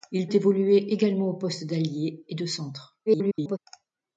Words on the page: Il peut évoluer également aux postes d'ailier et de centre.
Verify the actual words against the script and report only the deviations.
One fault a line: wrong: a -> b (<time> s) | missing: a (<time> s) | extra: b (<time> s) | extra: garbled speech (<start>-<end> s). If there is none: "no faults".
missing: peut (0.3 s)
extra: garbled speech (3.1-3.6 s)